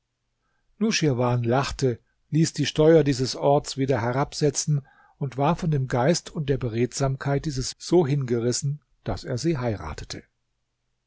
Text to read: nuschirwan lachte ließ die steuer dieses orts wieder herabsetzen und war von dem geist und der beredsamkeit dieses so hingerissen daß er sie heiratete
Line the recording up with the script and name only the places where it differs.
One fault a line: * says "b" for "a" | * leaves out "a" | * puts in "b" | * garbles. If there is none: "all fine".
all fine